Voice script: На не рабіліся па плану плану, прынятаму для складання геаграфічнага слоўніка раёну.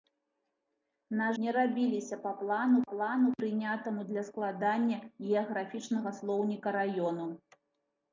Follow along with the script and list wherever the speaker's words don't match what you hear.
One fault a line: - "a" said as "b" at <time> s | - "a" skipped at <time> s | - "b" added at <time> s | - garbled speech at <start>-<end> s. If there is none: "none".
none